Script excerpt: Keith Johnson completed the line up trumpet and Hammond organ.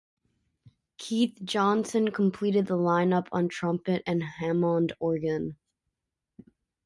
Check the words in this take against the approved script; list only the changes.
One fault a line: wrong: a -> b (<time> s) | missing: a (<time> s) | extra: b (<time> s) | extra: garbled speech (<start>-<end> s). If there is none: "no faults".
extra: on (3.3 s)